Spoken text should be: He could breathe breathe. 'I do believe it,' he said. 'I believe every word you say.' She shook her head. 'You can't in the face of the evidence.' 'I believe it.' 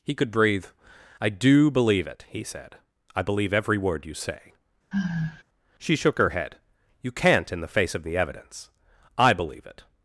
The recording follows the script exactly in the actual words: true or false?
false